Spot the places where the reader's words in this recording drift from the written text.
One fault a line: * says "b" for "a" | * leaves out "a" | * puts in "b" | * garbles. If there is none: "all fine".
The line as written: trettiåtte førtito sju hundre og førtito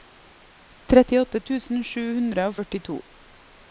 * says "tusen" for "førtito"